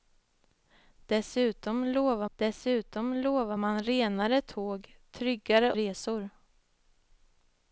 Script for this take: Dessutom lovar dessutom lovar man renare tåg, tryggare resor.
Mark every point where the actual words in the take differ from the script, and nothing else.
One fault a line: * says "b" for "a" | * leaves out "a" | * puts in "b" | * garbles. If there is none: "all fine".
all fine